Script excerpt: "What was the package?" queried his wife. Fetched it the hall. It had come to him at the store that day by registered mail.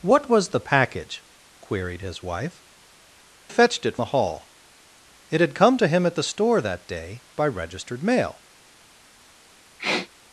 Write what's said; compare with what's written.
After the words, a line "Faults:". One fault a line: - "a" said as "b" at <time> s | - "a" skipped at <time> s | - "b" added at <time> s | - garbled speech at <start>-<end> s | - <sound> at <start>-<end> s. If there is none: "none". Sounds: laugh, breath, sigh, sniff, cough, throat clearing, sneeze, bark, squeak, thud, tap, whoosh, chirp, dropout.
"What was the package?" queried his wife. Fetched it the hall. It had come to him at the store that day by registered mail.
Faults:
- sniff at 9.8-10.1 s